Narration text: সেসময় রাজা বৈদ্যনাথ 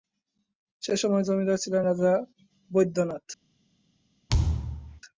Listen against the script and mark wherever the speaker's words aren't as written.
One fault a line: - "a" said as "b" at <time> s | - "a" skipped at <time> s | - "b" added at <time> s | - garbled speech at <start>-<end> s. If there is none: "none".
- "জমিদার ছিলেন" added at 1.3 s